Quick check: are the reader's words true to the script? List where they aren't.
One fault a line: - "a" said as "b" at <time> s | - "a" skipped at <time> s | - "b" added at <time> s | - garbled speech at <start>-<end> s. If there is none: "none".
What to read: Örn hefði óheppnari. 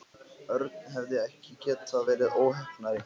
- "ekki getað verið" added at 1.2 s